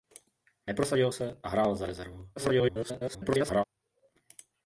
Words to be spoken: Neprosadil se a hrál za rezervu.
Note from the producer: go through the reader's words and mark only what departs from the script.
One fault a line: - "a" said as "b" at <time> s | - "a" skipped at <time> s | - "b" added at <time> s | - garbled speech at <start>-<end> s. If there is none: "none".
- garbled speech at 2.4-3.6 s